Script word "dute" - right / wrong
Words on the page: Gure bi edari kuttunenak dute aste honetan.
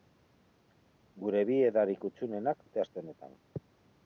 right